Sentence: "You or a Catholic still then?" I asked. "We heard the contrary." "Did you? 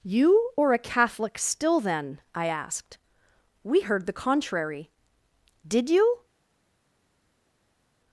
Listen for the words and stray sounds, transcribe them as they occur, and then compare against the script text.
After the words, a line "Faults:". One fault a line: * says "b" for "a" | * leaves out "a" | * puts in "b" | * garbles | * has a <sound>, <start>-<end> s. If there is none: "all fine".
"You or a Catholic still then?" I asked. "We heard the contrary." "Did you?
Faults:
all fine